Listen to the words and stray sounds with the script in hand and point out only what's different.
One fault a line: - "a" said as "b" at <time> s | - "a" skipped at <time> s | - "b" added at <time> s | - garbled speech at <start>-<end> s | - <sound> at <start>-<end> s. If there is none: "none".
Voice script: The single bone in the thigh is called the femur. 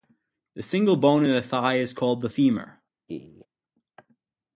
- laugh at 3.1-3.5 s